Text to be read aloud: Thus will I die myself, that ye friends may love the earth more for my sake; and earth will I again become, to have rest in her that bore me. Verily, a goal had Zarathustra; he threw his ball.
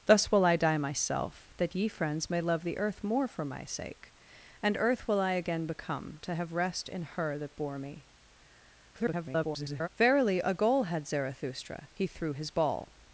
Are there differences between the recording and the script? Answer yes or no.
yes